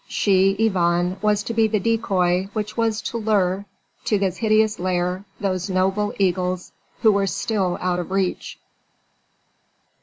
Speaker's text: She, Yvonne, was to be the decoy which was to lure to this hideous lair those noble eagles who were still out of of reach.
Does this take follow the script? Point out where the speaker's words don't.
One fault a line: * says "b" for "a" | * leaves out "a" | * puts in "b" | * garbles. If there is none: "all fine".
* leaves out "of"